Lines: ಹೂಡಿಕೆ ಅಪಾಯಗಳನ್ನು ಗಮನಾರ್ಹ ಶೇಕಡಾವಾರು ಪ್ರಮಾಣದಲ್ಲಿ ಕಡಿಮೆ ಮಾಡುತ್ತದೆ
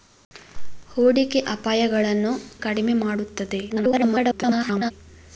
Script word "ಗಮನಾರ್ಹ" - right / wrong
wrong